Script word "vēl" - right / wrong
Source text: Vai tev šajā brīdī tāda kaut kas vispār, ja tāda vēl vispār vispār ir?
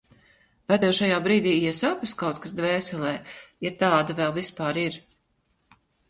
right